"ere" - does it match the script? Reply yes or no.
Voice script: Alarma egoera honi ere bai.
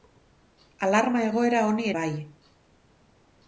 no